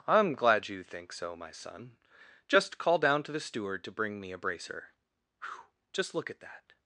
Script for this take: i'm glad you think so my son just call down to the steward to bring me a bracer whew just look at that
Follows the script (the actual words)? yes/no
yes